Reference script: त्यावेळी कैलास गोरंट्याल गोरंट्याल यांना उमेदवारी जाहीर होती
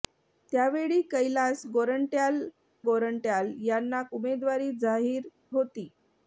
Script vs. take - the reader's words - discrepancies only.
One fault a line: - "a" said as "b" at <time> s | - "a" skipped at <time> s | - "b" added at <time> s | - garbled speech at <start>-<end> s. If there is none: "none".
none